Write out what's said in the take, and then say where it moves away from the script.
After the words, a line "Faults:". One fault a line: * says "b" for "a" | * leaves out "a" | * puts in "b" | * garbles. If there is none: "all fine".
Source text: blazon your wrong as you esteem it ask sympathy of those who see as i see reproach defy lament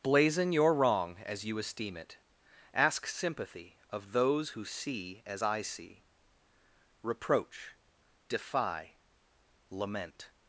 blazon your wrong as you esteem it ask sympathy of those who see as i see reproach defy lament
Faults:
all fine